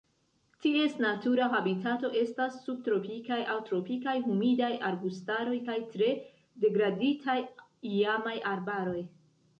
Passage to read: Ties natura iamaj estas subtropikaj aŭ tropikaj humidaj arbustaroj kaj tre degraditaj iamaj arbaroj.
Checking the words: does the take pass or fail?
fail